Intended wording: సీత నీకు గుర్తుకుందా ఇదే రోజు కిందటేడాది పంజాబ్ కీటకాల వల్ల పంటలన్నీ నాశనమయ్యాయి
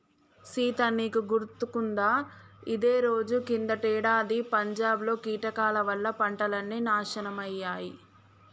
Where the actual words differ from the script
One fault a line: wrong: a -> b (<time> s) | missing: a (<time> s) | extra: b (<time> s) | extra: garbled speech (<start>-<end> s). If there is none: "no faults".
extra: లో (5.0 s)